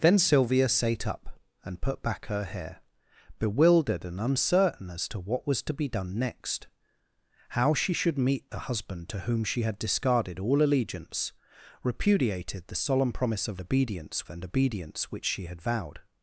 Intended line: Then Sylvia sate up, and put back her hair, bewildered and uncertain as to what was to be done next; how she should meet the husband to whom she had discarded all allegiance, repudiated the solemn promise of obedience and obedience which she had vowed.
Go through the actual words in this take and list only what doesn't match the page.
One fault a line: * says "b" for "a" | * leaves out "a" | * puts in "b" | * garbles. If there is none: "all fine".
all fine